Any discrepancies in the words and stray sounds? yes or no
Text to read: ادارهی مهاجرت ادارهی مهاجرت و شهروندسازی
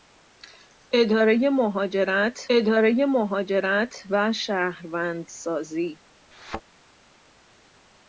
yes